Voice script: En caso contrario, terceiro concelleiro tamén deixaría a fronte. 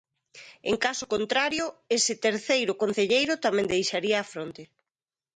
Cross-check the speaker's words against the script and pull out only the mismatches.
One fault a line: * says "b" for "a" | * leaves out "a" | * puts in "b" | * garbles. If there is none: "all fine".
* puts in "ese"